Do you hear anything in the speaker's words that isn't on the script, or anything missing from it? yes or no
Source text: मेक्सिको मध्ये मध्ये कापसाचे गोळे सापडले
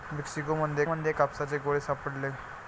no